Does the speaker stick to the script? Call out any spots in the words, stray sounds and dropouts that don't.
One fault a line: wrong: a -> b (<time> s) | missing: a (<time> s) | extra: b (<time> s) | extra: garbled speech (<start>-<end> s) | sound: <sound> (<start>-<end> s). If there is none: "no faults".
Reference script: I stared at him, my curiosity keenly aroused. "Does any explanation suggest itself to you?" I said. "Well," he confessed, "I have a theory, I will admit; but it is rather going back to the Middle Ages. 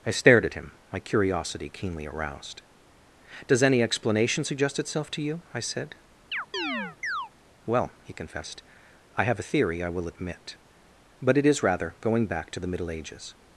sound: chirp (6.3-7.3 s)